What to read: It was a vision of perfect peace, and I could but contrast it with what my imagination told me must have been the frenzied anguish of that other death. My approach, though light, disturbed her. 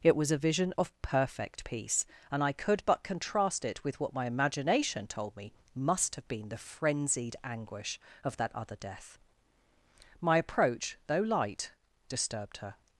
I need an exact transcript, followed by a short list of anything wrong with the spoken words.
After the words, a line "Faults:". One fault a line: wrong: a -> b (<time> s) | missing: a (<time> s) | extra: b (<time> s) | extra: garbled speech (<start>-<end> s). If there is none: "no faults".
It was a vision of perfect peace, and I could but contrast it with what my imagination told me must have been the frenzied anguish of that other death. My approach, though light, disturbed her.
Faults:
no faults